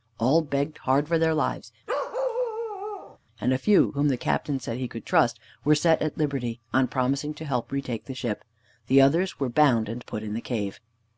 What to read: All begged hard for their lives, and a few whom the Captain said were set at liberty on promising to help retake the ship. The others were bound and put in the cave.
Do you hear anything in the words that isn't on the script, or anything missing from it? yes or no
yes